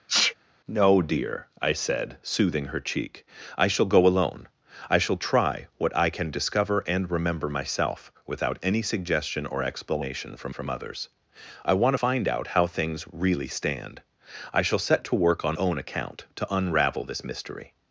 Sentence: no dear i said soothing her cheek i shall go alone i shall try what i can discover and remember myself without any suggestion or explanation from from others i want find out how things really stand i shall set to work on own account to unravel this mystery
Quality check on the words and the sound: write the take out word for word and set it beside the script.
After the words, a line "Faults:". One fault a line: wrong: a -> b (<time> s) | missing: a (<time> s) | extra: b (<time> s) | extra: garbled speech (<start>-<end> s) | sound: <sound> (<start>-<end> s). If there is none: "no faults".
no dear i said soothing her cheek i shall go alone i shall try what i can discover and remember myself without any suggestion or explanation from from others i want find out how things really stand i shall set to work on own account to unravel this mystery
Faults:
sound: sneeze (0.1-0.3 s)